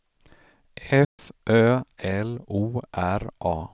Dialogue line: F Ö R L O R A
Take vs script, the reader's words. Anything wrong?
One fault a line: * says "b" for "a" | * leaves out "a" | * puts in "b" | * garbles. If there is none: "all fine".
* leaves out "R"